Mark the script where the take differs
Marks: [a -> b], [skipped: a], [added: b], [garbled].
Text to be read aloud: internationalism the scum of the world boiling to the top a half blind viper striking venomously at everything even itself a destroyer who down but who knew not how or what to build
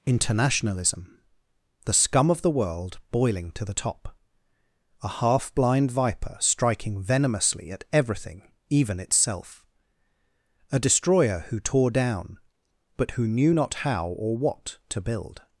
internationalism the scum of the world boiling to the top a half blind viper striking venomously at everything even itself a destroyer who [added: tore] down but who knew not how or what to build